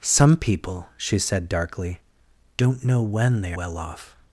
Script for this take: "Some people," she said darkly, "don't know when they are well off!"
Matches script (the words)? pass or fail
fail